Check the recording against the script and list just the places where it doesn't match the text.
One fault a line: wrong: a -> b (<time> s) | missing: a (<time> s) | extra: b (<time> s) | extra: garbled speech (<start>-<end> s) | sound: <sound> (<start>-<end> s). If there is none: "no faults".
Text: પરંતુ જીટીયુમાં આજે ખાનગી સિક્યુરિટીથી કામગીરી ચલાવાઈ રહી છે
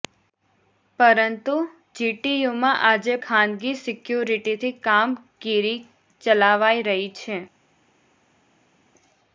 no faults